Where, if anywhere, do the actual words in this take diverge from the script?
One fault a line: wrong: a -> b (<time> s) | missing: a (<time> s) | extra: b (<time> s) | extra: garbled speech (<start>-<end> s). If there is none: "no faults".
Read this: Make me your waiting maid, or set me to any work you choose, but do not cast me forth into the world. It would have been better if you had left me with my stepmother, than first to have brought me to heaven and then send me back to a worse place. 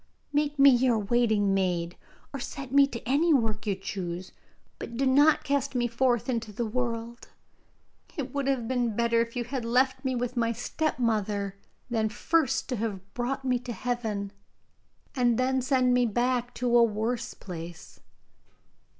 no faults